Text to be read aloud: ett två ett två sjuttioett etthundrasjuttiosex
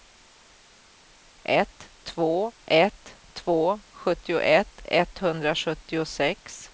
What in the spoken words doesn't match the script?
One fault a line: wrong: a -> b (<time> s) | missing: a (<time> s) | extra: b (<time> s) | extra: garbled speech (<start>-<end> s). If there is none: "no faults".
no faults